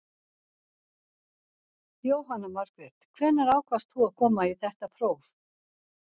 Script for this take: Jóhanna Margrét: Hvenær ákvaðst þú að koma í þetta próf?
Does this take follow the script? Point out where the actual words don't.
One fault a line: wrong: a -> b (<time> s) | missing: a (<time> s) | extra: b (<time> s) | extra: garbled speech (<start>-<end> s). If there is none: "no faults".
no faults